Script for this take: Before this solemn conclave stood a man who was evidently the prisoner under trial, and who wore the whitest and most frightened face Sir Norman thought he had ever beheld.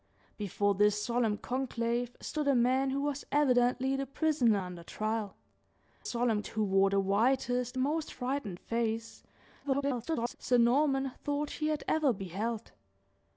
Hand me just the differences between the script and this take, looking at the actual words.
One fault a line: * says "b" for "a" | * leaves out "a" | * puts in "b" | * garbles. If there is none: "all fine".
* says "solemn" for "and"
* leaves out "and"
* garbles